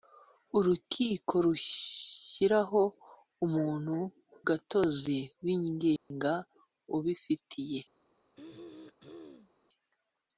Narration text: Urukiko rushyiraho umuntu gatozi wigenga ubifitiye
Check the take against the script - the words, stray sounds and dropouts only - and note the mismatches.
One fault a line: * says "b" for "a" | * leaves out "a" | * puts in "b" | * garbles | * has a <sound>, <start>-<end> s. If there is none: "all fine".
* has a dropout, 6.0-6.1 s
* has a throat clearing, 8.4-9.5 s